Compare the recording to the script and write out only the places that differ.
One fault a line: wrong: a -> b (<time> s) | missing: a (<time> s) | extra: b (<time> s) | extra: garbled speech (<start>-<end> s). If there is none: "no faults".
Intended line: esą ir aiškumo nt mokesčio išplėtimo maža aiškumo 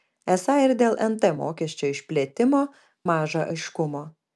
wrong: aiškumo -> dėl (0.8 s)